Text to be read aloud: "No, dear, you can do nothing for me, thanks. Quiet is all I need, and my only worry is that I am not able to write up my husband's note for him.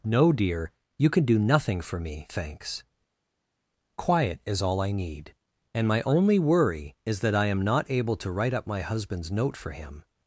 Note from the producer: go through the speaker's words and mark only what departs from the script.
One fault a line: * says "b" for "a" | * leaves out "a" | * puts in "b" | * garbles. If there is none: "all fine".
all fine